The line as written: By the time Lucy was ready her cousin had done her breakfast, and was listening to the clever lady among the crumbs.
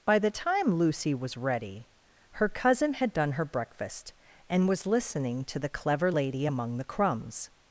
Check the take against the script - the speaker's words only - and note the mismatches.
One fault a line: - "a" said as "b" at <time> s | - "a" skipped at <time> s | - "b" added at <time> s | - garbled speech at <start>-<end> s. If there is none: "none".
none